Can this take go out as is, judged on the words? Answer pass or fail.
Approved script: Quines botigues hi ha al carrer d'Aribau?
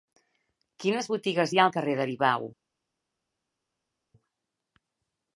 pass